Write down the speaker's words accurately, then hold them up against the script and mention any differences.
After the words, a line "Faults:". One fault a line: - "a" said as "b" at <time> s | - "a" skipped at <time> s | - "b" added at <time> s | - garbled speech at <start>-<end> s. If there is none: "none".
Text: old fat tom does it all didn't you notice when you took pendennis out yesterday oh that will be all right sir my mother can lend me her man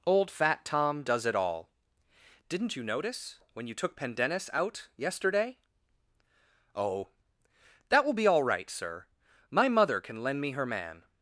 old fat tom does it all didn't you notice when you took pendennis out yesterday oh that will be all right sir my mother can lend me her man
Faults:
none